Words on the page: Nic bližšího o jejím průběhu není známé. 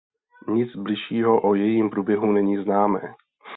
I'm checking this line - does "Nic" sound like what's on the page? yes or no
yes